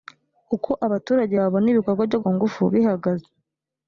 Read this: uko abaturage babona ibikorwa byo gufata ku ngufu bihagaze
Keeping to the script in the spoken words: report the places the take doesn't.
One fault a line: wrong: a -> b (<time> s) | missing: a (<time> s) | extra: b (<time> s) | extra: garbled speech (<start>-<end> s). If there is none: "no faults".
missing: gufata (2.2 s)